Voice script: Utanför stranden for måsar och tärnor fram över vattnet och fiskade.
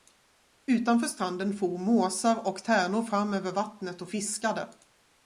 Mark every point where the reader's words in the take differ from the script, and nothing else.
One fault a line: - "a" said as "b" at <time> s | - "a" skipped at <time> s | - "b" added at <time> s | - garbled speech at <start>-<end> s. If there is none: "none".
none